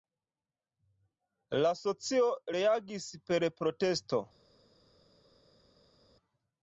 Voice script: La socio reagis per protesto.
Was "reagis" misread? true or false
false